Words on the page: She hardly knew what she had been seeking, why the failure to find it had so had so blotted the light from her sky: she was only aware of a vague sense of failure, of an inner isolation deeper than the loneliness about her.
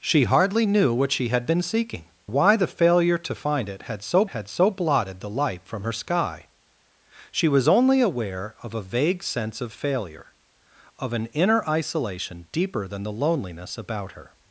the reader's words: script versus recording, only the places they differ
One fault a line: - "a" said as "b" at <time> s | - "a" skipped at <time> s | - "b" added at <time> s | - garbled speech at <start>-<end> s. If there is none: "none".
none